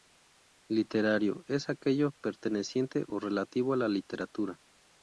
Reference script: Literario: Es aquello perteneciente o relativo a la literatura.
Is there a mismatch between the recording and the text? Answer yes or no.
no